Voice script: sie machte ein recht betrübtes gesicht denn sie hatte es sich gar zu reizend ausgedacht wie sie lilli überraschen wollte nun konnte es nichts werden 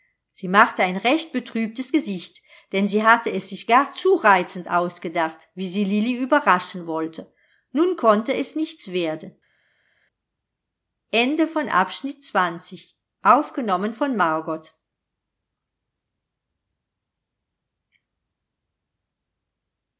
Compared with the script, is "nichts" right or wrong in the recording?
right